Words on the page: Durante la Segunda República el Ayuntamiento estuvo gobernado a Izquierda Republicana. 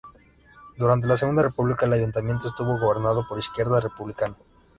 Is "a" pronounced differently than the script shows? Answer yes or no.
yes